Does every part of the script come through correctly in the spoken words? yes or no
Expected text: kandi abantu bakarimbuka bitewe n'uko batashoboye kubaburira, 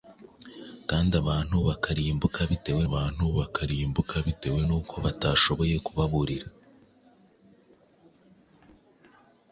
no